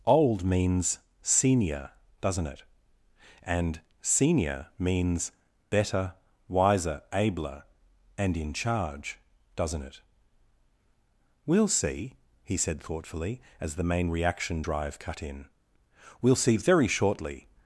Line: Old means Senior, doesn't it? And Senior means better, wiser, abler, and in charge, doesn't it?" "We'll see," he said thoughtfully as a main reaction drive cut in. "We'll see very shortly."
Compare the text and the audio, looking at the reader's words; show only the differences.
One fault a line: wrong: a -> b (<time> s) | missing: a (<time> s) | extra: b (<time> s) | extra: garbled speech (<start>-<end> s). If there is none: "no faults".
wrong: a -> the (13.8 s)